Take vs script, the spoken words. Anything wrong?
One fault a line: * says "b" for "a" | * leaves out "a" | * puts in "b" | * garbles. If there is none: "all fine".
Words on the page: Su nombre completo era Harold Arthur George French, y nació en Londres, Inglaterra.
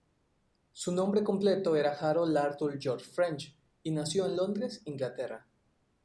all fine